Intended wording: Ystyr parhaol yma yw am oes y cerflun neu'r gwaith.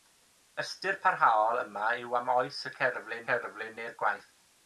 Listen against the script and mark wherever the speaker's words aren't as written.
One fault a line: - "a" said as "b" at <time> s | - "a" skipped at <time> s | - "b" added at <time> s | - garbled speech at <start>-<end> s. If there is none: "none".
- "cerflun" added at 3.3 s